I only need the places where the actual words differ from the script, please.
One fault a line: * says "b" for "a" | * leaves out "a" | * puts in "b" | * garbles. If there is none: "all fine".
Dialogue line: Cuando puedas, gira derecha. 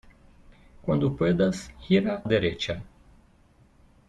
all fine